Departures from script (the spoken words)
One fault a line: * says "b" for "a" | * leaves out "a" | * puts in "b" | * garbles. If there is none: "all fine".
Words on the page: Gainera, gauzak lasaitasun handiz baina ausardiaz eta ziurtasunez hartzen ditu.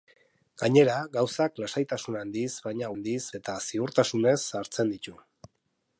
* says "handiz" for "ausardiaz"